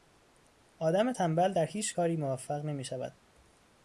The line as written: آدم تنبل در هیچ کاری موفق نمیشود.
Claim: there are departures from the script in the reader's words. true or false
false